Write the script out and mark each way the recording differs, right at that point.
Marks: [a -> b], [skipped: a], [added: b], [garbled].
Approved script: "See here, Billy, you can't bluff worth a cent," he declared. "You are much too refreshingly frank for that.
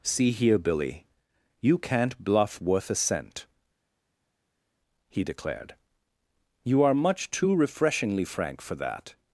"See here, Billy, you can't bluff worth a cent," he declared. "You are much too refreshingly frank for that.